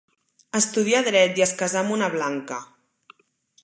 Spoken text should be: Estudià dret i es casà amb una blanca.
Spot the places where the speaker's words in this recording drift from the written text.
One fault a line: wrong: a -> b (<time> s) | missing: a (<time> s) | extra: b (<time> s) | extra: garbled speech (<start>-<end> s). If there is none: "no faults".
no faults